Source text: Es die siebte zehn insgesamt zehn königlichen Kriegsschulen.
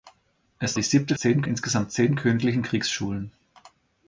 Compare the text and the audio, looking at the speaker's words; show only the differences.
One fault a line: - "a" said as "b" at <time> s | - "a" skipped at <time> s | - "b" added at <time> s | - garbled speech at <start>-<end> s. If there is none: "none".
none